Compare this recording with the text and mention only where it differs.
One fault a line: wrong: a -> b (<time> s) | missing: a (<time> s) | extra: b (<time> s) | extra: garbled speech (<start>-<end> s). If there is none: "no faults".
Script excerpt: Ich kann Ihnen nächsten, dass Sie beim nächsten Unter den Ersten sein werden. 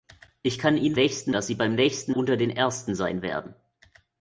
no faults